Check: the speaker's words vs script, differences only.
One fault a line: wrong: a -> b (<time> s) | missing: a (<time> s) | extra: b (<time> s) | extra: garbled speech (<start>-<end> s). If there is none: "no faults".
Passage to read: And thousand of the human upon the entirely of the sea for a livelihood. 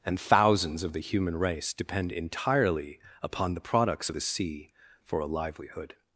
wrong: thousand -> thousands (0.2 s)
extra: race depend entirely (1.4 s)
wrong: entirely -> products (3.6 s)